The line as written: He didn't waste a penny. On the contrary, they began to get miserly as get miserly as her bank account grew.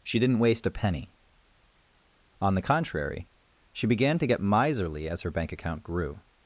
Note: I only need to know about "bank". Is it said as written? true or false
true